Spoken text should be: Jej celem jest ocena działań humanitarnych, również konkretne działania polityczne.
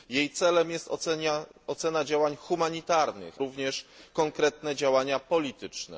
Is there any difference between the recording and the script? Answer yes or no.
no